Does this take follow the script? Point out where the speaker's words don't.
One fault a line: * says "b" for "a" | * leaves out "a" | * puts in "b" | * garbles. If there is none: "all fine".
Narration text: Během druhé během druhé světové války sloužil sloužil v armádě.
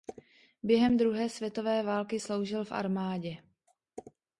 * leaves out "během druhé"
* leaves out "sloužil"